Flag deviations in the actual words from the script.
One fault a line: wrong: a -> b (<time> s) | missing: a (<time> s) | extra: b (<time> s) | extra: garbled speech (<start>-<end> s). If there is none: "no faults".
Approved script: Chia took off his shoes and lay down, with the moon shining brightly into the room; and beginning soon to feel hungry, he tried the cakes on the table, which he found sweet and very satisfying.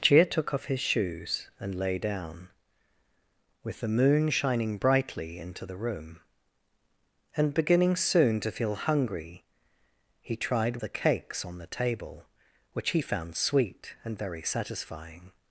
no faults